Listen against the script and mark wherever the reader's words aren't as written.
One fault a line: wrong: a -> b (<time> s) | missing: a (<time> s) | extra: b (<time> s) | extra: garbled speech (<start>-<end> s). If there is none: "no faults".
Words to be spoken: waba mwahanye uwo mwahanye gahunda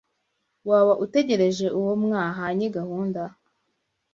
wrong: mwahanye -> utegereje (1.0 s)